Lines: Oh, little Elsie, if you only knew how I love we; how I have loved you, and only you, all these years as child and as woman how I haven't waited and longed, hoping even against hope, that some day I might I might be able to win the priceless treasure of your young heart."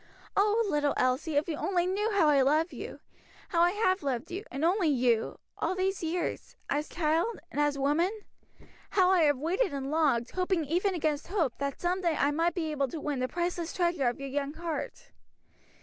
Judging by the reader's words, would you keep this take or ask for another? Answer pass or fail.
fail